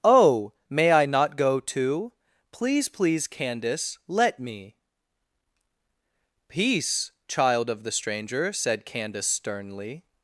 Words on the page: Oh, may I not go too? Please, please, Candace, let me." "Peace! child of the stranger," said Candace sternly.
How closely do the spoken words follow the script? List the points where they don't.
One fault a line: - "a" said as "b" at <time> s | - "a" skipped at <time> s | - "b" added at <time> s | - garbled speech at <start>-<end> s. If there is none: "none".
none